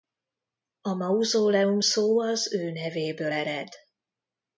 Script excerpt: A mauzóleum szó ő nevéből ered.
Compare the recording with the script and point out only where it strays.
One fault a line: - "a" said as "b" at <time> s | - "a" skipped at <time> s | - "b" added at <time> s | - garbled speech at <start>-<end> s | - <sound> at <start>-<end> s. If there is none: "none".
- "az" added at 2.2 s